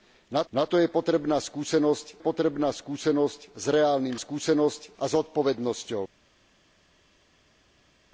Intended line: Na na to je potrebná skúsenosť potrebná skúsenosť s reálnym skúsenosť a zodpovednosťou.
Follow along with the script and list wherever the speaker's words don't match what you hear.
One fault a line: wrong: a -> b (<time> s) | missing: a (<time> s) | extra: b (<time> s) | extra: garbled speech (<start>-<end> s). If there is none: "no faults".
no faults